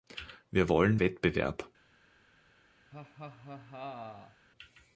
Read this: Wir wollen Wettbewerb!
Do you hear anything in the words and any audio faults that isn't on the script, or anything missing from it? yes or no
yes